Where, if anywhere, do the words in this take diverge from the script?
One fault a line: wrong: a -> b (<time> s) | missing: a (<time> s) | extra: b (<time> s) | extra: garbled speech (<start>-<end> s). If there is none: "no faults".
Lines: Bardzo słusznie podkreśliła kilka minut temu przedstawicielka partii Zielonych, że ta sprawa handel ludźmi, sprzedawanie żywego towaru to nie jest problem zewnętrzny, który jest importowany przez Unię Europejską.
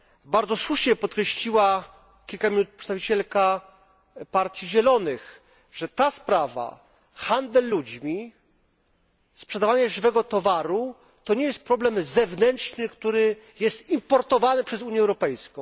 missing: temu (2.8 s)